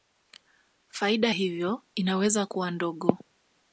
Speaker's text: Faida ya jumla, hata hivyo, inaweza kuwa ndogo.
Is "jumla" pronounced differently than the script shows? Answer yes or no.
yes